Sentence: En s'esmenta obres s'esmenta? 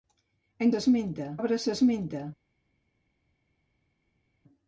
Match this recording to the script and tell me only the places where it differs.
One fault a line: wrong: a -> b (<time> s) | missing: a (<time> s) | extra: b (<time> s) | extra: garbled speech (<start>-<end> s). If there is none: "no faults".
no faults